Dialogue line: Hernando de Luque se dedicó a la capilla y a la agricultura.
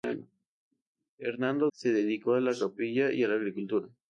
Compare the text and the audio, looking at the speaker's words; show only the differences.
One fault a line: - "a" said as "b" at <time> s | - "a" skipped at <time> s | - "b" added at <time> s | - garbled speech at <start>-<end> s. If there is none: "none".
- "de Luque" skipped at 1.7 s